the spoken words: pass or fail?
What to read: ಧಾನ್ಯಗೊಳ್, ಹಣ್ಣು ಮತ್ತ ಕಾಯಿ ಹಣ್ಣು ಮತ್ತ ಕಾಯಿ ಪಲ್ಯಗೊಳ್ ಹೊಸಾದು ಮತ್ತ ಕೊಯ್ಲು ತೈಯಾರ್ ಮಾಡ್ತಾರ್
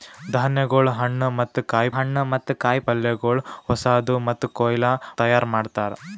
pass